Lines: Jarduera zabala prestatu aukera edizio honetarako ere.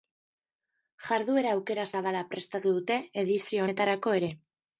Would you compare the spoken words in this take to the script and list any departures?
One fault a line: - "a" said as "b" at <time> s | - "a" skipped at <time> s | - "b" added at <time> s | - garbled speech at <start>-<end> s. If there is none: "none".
- "aukera" added at 1.6 s
- "aukera" said as "dute" at 2.8 s